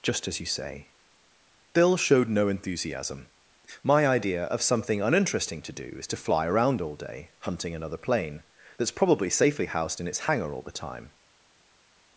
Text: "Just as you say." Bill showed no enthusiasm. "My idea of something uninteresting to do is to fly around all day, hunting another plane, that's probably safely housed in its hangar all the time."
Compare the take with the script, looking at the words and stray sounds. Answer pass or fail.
pass